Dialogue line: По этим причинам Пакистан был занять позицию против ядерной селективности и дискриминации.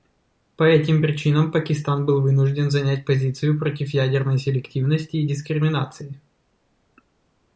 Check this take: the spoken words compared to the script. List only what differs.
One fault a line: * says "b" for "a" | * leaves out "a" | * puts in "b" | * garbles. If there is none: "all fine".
* puts in "вынужден"